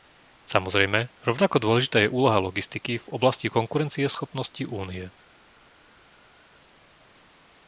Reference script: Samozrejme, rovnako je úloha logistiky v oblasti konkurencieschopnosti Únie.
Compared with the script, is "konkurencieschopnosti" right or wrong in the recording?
right